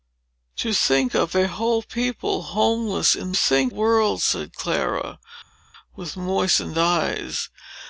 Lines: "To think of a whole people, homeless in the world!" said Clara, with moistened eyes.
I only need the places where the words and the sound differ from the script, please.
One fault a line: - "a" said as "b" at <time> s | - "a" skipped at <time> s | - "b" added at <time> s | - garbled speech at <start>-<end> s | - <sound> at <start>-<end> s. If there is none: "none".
- "the" said as "think" at 3.3 s